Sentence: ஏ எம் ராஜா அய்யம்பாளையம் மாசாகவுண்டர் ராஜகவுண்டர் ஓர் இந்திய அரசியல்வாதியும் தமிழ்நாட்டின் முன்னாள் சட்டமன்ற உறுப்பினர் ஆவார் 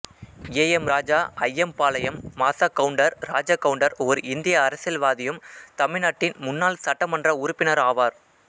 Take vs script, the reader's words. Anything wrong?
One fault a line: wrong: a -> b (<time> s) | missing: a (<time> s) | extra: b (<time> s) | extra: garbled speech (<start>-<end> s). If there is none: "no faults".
no faults